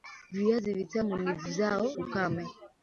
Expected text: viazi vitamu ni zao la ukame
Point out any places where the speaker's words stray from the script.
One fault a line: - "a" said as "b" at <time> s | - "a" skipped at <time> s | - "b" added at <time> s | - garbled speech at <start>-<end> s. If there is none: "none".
- "la" skipped at 1.9 s